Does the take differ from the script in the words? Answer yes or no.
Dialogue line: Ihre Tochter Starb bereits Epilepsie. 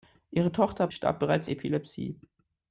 no